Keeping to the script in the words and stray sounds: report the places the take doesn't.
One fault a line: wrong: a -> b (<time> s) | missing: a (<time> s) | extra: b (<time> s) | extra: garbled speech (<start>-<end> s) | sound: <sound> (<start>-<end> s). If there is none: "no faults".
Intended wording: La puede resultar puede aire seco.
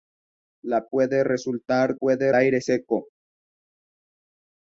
no faults